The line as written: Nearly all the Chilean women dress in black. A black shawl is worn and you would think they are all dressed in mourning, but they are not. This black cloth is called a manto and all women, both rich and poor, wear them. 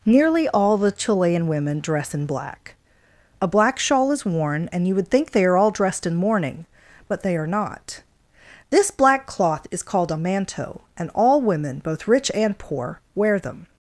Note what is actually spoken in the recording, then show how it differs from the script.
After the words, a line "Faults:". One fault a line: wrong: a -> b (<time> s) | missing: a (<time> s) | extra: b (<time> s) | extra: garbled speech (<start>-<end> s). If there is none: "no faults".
Nearly all the Chilean women dress in black. A black shawl is worn and you would think they are all dressed in mourning, but they are not. This black cloth is called a manto and all women, both rich and poor, wear them.
Faults:
no faults